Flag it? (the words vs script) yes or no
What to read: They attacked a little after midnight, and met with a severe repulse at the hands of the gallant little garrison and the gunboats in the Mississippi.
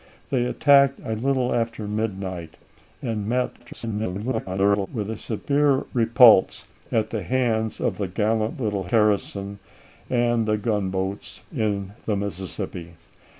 yes